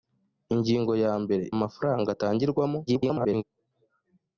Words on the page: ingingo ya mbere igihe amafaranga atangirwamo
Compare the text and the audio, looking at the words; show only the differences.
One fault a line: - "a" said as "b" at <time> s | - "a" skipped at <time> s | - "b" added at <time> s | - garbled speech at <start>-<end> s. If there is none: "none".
- "igihe" skipped at 1.4 s
- garbled speech at 2.9-3.4 s